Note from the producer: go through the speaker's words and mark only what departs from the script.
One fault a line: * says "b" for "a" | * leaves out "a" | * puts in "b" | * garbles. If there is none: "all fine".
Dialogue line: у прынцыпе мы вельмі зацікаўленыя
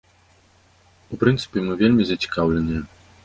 all fine